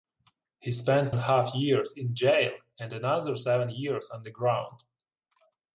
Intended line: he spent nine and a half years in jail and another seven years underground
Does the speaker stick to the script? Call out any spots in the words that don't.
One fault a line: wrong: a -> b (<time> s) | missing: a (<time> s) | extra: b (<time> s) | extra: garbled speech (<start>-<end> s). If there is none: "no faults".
missing: nine (1.1 s)